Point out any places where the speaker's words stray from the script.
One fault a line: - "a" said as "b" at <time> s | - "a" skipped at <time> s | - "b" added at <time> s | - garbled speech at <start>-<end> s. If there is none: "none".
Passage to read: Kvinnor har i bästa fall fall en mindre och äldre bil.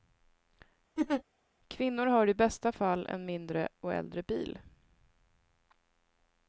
- "fall" skipped at 3.1 s